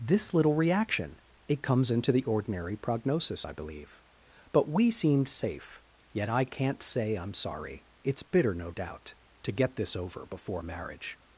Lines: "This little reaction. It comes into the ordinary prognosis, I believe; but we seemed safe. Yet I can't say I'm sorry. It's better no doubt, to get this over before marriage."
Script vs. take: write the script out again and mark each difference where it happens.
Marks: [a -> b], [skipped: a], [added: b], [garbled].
"This little reaction. It comes into the ordinary prognosis, I believe; but we seemed safe. Yet I can't say I'm sorry. It's [better -> bitter] no doubt, to get this over before marriage."